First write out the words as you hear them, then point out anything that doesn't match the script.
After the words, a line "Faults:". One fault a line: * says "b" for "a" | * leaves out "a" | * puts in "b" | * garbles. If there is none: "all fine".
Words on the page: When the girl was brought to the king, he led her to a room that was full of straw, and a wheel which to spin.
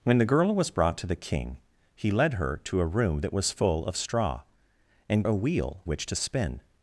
When the girl was brought to the king, he led her to a room that was full of straw, and a wheel which to spin.
Faults:
all fine